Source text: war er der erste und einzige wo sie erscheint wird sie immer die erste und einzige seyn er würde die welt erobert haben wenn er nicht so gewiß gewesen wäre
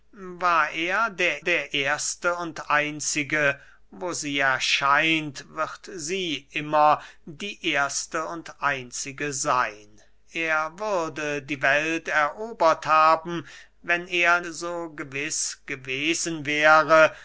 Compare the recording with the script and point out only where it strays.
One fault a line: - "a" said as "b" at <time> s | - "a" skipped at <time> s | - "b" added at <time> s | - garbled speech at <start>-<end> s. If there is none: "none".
- "der" added at 1.4 s
- "nicht" skipped at 14.4 s